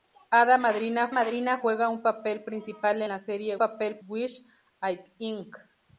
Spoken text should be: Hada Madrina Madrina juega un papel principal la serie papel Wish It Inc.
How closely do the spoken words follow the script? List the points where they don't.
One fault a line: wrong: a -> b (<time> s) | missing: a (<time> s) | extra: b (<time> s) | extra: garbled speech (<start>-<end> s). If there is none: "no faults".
no faults